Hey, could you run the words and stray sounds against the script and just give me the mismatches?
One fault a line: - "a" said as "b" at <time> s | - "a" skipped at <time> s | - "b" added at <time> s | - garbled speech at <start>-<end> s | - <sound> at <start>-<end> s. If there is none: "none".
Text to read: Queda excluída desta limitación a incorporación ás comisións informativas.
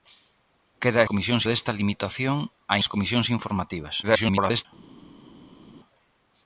- "excluída" said as "comisións" at 1.1 s
- "incorporación" skipped at 2.8 s
- garbled speech at 4.0-4.7 s